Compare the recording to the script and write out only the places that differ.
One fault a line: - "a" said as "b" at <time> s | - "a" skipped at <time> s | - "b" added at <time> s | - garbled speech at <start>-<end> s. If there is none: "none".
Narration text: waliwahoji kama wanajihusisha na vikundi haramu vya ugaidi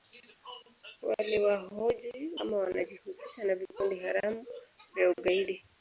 none